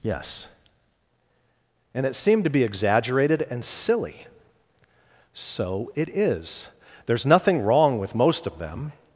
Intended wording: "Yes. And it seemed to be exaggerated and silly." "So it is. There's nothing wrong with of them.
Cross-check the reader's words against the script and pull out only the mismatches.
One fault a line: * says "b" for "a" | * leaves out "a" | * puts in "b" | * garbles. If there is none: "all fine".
* puts in "most"